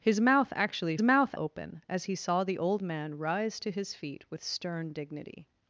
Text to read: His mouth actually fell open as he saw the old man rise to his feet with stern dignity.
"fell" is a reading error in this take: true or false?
true